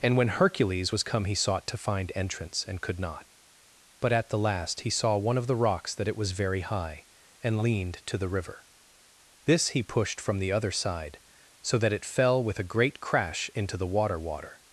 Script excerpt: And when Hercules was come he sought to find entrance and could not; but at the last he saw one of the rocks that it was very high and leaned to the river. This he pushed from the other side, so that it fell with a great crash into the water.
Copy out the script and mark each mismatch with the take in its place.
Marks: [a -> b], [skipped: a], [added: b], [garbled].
And when Hercules was come he sought to find entrance and could not; but at the last he saw one of the rocks that it was very high and leaned to the river. This he pushed from the other side, so that it fell with a great crash into the water. [added: water]